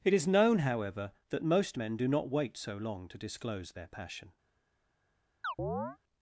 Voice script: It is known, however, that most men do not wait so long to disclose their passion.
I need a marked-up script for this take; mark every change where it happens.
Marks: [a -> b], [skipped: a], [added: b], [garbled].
It is known, however, that most men do not wait so long to disclose their passion.